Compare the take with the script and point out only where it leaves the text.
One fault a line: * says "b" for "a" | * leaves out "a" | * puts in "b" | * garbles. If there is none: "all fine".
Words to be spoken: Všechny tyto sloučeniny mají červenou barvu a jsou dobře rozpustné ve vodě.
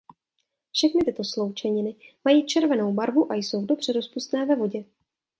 all fine